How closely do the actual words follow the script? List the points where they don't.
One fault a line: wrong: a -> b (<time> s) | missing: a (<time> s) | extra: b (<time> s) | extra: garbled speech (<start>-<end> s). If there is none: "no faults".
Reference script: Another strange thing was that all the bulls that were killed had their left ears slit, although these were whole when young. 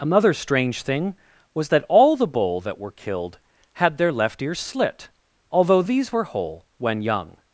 wrong: bulls -> bull (2.3 s)